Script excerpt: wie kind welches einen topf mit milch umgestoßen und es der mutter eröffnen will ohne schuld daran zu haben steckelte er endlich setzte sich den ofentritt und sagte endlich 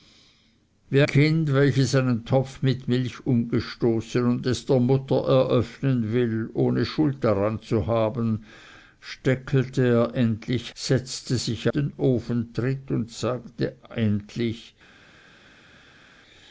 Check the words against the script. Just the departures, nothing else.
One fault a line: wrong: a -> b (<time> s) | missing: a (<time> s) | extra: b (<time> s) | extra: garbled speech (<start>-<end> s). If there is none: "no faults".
no faults